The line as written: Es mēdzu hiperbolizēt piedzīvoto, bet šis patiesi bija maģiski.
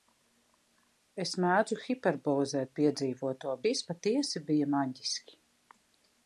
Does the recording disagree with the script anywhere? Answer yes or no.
yes